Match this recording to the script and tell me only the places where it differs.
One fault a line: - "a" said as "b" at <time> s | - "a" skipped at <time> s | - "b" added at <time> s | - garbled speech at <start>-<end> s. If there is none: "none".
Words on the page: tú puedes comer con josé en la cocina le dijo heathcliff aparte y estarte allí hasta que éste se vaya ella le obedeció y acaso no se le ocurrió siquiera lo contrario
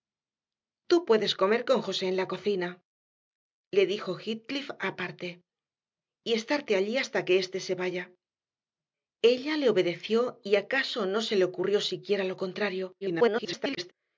- garbled speech at 13.0-13.9 s